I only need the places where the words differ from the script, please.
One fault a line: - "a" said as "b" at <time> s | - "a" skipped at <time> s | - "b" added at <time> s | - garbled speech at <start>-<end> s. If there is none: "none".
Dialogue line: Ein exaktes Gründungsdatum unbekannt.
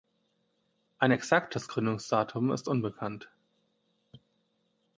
- "ist" added at 2.5 s